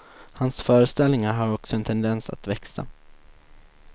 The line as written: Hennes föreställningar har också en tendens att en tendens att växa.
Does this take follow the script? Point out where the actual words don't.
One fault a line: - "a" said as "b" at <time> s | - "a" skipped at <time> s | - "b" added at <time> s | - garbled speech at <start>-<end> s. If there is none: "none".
- "Hennes" said as "Hans" at 0.3 s
- "en tendens att" skipped at 2.5 s